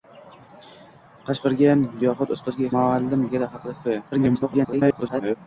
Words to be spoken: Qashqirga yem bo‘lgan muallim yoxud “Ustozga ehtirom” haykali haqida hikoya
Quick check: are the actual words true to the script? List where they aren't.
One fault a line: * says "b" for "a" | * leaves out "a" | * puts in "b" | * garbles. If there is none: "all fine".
* leaves out "yem bo‘lgan muallim"
* says "muallim" for "ehtirom"
* garbles